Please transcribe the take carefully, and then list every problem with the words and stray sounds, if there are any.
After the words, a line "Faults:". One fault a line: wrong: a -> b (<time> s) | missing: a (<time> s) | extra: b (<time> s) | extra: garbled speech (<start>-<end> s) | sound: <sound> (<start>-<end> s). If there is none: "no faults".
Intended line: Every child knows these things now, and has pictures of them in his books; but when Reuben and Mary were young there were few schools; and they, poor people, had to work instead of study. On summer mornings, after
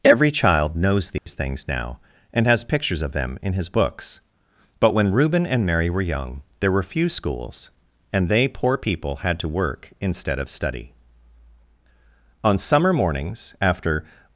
Every child knows these things now, and has pictures of them in his books; but when Reuben and Mary were young there were few schools; and they, poor people, had to work instead of study. On summer mornings, after
Faults:
sound: dropout (1.2-1.3 s)